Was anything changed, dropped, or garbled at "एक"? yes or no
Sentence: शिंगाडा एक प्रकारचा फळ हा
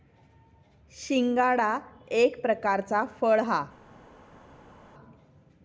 no